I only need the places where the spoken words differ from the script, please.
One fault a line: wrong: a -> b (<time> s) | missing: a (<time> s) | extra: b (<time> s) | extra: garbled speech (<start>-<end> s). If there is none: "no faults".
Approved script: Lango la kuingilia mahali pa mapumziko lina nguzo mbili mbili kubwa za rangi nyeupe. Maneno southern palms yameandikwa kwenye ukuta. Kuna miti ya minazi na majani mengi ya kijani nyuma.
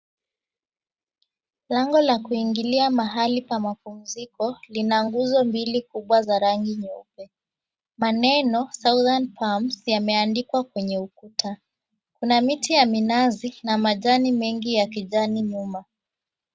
missing: mbili (5.8 s)